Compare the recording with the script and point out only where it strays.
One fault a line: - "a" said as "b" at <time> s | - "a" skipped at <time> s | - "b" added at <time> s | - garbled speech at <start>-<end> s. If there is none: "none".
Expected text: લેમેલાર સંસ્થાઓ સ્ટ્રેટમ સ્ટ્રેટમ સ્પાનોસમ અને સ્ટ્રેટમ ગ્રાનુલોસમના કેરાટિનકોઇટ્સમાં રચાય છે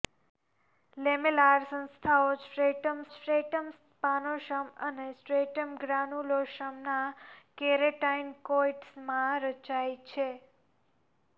none